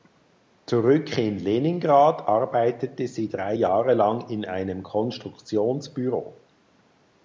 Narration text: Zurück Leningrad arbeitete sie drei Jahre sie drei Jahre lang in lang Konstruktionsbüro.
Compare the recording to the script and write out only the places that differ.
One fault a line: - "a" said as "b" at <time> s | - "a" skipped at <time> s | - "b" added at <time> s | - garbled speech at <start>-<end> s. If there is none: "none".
- "in" added at 1.1 s
- "sie drei Jahre" skipped at 3.9 s
- "lang" said as "einem" at 4.4 s